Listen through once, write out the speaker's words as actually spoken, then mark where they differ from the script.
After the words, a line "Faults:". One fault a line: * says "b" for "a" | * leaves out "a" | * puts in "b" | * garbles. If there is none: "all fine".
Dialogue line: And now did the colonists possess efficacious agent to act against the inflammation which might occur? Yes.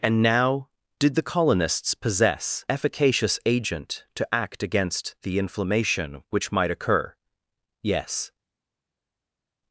And now did the colonists possess efficacious agent to act against the inflammation which might occur? Yes.
Faults:
all fine